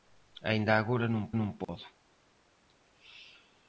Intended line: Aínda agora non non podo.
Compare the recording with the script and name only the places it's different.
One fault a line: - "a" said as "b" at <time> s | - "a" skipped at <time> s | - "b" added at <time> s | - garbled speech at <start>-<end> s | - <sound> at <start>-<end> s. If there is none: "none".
- dropout at 1.6-1.7 s